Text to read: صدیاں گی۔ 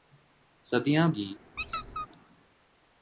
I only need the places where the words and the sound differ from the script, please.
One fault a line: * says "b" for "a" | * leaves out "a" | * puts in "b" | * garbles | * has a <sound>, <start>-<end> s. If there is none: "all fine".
* has a squeak, 1.6-2.1 s